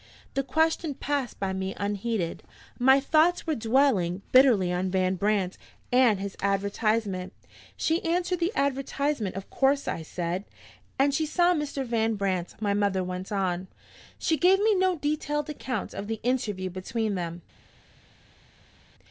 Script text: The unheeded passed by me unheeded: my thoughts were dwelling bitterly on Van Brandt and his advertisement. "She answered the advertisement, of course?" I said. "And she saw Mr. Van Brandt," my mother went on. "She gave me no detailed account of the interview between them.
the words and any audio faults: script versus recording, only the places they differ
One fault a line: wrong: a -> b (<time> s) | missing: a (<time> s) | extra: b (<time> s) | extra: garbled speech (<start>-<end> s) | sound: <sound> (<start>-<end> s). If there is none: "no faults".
wrong: unheeded -> question (0.4 s)